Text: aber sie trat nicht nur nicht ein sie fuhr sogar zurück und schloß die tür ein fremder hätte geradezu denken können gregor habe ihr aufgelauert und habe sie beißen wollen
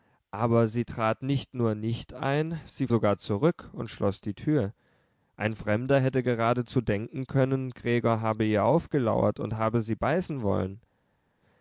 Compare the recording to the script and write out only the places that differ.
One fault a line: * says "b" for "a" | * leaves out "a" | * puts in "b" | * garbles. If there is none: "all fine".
* leaves out "fuhr"